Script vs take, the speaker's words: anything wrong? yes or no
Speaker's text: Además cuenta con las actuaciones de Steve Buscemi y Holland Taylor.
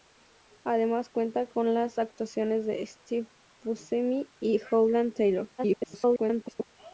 yes